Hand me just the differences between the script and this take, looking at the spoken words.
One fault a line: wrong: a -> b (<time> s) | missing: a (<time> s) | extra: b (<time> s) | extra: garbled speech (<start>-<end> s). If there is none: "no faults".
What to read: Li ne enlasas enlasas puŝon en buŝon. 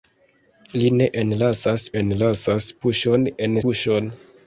no faults